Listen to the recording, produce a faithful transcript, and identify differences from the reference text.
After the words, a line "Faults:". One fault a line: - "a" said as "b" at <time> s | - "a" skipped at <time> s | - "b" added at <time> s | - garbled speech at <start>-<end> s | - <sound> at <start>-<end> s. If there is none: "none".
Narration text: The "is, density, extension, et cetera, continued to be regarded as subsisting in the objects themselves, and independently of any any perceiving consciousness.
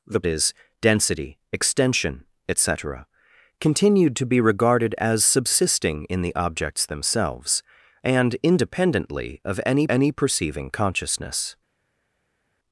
The "is, density, extension, et cetera, continued to be regarded as subsisting in the objects themselves, and independently of any any perceiving consciousness.
Faults:
none